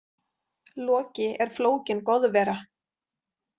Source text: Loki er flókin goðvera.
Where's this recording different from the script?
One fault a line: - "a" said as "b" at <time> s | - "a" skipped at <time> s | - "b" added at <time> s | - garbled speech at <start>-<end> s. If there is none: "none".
none